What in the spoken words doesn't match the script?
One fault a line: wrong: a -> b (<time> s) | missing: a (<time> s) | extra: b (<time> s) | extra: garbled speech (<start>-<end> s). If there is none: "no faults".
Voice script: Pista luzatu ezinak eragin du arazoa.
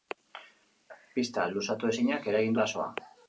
missing: du (2.6 s)